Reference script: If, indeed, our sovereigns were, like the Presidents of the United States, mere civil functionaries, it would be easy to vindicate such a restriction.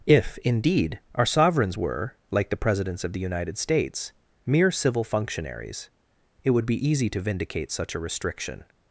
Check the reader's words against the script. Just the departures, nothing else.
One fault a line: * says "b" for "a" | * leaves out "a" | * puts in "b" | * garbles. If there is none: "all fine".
all fine